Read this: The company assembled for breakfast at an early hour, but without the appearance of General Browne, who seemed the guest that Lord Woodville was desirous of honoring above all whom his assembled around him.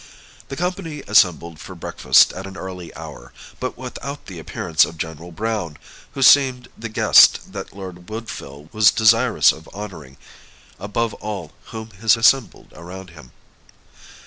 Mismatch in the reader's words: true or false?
false